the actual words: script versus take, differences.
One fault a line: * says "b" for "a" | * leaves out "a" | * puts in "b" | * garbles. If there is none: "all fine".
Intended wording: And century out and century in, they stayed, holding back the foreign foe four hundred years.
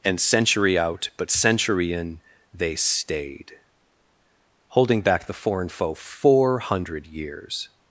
* says "but" for "and"